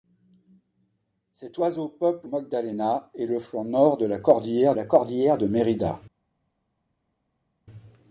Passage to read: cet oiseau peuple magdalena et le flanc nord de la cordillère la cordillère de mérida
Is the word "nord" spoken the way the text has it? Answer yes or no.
yes